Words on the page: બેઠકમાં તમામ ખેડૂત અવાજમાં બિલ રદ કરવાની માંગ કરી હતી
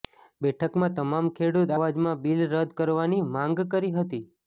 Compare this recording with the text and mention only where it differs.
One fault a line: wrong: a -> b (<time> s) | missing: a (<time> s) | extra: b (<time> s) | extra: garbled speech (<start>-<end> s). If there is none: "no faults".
no faults